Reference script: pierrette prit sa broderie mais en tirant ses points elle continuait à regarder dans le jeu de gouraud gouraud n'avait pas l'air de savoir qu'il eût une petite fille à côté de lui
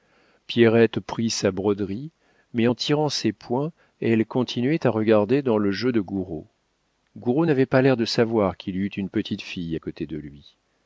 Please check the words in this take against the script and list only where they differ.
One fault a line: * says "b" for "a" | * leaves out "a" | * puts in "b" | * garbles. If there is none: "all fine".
all fine